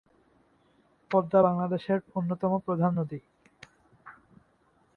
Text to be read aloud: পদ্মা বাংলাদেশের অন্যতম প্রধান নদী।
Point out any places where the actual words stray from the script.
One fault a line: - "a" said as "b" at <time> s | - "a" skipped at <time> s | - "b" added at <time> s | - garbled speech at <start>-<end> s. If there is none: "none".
none